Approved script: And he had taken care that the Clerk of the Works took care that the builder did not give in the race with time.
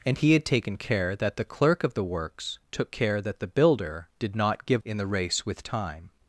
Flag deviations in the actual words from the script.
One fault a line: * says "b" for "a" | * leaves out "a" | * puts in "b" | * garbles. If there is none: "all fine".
all fine